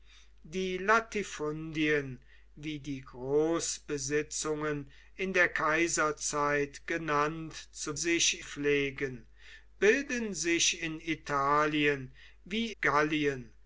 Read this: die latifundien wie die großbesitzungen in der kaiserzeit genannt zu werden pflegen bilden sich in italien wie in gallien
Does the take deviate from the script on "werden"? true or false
true